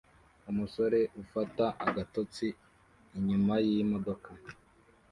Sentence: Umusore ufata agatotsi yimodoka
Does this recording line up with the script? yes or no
no